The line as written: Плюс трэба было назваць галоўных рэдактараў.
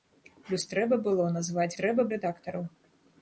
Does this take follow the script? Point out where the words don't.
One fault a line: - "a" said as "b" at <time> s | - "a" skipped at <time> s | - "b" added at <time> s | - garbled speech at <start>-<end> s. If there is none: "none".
- "галоўных" said as "трэба" at 1.8 s